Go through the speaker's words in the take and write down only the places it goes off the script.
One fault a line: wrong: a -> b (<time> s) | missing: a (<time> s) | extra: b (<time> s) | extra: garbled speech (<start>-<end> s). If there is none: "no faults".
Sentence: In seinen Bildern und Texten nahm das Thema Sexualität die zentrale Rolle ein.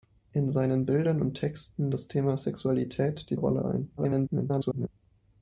missing: nahm (1.9 s)
missing: zentrale (3.4 s)
extra: garbled speech (4.0-4.9 s)